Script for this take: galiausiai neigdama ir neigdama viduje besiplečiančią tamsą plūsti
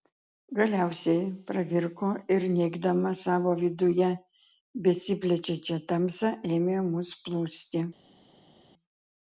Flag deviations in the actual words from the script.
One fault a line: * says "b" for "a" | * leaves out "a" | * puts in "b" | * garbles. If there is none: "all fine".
* says "pravirko" for "neigdama"
* puts in "savo"
* puts in "ėmė mus"